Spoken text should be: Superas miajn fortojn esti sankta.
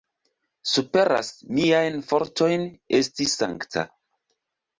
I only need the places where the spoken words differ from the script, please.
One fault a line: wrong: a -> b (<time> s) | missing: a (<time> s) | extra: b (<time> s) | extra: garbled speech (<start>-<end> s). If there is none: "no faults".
no faults